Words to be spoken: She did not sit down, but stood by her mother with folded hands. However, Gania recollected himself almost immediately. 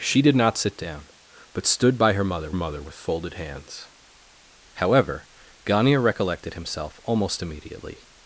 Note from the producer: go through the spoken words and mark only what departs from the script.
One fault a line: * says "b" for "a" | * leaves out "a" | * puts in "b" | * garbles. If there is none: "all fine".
* puts in "mother"